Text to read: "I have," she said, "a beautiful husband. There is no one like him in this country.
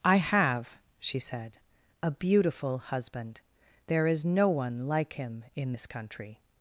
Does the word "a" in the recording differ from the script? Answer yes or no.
no